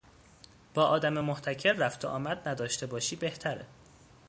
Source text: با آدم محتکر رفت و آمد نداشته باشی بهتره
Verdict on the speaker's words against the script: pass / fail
pass